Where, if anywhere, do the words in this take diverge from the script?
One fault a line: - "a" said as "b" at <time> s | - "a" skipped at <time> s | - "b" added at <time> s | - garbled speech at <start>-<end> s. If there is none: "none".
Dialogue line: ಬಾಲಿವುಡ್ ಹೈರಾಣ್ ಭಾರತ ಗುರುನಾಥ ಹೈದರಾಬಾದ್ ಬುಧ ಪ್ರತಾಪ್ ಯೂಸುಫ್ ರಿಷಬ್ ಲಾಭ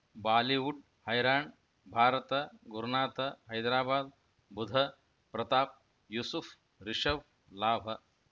none